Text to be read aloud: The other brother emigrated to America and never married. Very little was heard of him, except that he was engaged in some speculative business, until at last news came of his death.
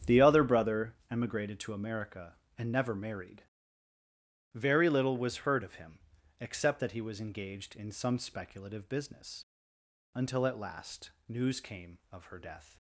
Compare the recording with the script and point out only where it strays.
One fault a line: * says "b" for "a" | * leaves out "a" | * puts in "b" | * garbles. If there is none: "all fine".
* says "her" for "his"